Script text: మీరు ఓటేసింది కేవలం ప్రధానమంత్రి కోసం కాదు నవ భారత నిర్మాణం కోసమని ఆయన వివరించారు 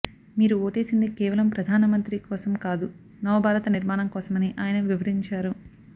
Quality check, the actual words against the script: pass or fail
pass